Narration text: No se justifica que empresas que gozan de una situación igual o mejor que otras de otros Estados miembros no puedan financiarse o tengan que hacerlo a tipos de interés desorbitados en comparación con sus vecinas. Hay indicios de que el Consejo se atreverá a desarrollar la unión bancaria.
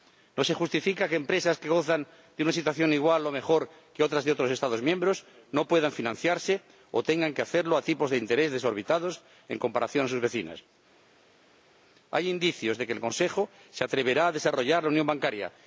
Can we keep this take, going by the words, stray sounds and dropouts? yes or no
yes